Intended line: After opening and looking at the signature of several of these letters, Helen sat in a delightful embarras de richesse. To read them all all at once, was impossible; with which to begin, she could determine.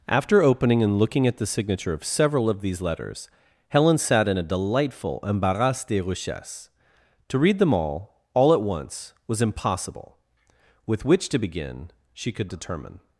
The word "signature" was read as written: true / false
true